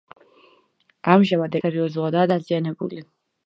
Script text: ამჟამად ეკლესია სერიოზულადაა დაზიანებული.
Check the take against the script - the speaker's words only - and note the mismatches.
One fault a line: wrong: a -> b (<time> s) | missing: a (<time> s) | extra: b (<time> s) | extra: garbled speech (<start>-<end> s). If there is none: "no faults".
missing: ეკლესია (1.6 s)